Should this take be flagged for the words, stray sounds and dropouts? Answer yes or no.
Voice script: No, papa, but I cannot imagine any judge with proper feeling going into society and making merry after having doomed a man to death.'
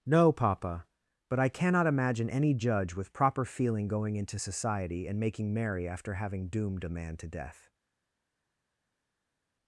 no